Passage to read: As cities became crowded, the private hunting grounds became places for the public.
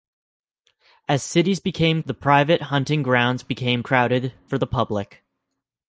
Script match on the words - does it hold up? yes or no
no